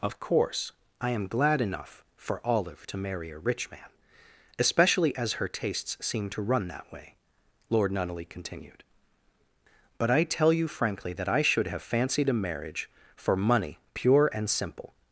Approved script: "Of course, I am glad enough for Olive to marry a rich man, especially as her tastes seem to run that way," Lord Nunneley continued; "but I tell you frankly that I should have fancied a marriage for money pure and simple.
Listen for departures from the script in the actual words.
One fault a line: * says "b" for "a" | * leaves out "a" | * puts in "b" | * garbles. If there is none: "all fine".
all fine